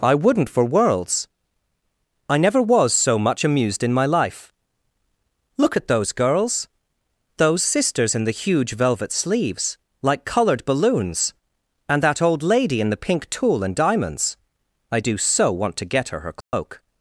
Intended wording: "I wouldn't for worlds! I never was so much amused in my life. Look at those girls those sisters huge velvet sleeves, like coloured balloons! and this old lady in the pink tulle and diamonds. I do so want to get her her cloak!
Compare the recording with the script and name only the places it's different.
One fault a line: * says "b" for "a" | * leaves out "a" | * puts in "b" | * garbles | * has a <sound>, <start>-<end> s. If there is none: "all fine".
* puts in "in the"
* says "that" for "this"
* has a dropout, 16.4-16.5 s